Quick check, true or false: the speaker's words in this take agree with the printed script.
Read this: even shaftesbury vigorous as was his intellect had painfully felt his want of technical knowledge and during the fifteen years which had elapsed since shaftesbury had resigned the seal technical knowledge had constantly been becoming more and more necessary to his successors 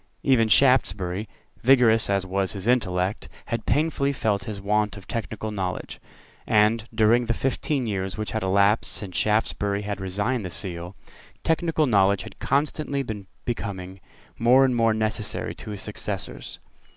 true